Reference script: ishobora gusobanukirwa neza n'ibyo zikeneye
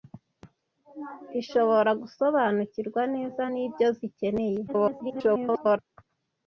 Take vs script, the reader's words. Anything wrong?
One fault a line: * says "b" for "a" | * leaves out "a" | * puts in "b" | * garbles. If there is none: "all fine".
* garbles